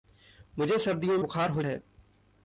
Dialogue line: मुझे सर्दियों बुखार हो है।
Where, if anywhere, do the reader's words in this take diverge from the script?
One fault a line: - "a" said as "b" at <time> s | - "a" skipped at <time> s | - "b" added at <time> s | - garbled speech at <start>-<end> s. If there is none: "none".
none